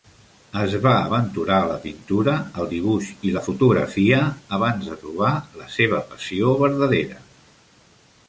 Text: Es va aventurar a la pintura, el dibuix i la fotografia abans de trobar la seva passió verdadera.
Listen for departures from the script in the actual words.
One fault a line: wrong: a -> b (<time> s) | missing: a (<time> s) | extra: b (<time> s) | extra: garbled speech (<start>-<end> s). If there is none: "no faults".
no faults